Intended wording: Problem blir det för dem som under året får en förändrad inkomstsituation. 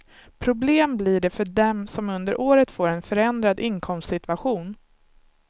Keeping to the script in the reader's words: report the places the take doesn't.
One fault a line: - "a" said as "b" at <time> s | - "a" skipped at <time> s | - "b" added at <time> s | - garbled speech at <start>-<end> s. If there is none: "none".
none